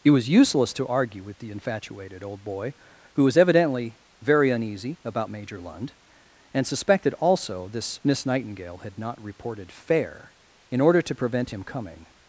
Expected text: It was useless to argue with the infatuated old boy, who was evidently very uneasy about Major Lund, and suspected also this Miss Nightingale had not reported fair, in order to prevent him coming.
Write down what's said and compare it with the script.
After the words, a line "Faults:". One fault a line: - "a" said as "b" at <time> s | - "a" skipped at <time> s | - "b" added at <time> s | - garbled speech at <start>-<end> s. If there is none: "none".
It was useless to argue with the infatuated old boy, who was evidently very uneasy about Major Lund, and suspected also this Miss Nightingale had not reported fair, in order to prevent him coming.
Faults:
none